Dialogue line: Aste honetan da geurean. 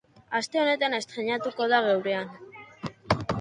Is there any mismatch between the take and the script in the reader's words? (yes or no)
yes